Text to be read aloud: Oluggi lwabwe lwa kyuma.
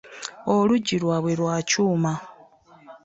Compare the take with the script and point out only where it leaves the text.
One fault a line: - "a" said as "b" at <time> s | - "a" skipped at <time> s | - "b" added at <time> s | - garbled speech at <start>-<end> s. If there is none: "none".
none